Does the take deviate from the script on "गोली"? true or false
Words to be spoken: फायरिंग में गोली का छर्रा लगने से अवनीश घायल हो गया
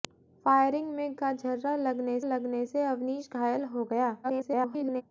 true